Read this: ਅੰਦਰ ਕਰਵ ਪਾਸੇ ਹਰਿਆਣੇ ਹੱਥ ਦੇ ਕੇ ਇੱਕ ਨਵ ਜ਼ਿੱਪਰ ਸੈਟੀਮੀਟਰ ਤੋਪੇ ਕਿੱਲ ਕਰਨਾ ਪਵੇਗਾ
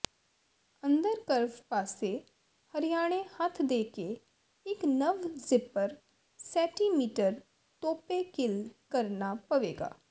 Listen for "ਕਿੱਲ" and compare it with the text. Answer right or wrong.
right